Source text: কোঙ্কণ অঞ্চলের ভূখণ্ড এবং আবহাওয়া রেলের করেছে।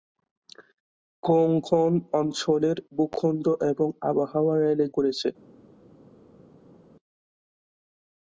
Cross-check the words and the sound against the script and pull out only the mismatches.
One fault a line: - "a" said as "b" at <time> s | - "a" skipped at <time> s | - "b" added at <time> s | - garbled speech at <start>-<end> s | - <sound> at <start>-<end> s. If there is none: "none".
none